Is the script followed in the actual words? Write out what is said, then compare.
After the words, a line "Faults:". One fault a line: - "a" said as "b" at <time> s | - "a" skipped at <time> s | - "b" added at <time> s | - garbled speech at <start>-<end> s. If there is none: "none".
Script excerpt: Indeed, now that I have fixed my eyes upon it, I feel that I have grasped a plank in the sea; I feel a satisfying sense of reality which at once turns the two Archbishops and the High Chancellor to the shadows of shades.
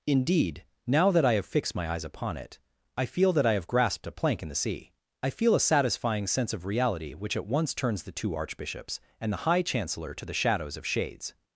Indeed, now that I have fixed my eyes upon it, I feel that I have grasped a plank in the sea; I feel a satisfying sense of reality which at once turns the two Archbishops and the High Chancellor to the shadows of shades.
Faults:
none